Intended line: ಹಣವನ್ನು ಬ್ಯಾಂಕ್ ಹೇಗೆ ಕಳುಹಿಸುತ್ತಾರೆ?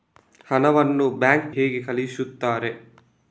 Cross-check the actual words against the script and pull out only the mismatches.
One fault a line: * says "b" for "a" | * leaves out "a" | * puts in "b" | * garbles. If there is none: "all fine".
all fine